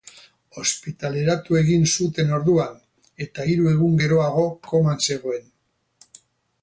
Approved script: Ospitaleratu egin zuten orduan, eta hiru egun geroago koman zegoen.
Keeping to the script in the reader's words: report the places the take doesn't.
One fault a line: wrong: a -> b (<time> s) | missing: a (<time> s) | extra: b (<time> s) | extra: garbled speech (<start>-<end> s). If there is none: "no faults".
no faults